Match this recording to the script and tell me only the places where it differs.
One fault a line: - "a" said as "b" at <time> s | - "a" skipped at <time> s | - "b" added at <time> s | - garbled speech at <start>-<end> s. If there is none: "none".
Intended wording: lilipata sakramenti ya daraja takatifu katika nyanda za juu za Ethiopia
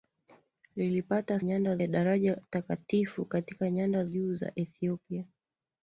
- "sakramenti" said as "nyanda" at 1.4 s
- "za" skipped at 4.0 s